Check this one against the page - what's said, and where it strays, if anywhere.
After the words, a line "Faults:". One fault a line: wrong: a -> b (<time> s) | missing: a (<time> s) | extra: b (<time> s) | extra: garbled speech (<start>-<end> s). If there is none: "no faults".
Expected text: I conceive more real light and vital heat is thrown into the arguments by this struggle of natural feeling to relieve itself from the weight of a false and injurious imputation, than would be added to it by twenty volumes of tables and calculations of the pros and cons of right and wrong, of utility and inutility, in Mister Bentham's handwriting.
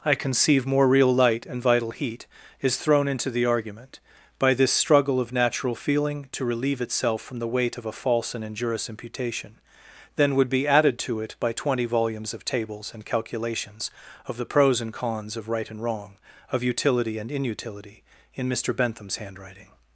I conceive more real light and vital heat is thrown into the argument by this struggle of natural feeling to relieve itself from the weight of a false and injurious imputation, than would be added to it by twenty volumes of tables and calculations of the pros and cons of right and wrong, of utility and inutility, in Mister Bentham's handwriting.
Faults:
wrong: arguments -> argument (3.5 s)